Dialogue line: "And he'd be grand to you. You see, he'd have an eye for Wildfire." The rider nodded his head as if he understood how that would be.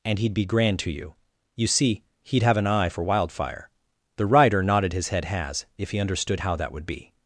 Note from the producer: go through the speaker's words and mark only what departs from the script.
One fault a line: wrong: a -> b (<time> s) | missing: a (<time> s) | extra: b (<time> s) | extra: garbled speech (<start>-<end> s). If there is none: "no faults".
wrong: as -> has (5.3 s)